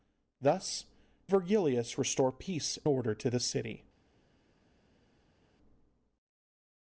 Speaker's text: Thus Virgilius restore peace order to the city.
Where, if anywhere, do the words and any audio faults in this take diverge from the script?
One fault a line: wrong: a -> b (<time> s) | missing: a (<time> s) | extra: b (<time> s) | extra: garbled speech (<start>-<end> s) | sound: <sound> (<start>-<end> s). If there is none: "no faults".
no faults